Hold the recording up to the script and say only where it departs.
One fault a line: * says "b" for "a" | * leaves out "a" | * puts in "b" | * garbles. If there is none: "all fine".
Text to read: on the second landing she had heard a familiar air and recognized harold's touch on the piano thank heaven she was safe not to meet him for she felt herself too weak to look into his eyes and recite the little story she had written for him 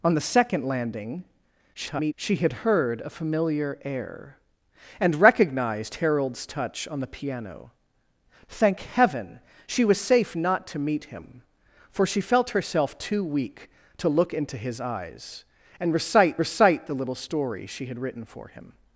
* garbles
* puts in "recite"